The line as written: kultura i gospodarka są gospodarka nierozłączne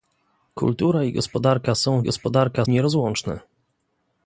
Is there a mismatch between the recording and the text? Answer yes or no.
no